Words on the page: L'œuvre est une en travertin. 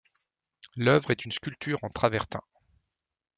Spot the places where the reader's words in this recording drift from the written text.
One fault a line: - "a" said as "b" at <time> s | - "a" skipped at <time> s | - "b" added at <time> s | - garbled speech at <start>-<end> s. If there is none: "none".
- "sculpture" added at 1.3 s